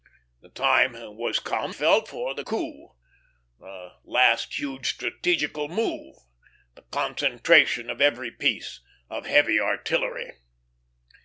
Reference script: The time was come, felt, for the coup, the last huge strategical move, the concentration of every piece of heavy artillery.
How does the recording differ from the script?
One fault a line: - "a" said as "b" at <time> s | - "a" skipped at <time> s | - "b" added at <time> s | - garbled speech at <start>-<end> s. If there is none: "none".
none